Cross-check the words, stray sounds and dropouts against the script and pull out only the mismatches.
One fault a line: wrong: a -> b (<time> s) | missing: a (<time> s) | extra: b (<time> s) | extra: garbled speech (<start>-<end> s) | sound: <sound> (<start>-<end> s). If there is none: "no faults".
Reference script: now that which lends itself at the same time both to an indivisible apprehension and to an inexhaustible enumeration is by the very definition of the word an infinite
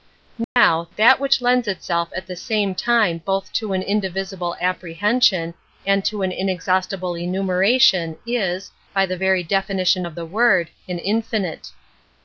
sound: dropout (0.4-0.6 s)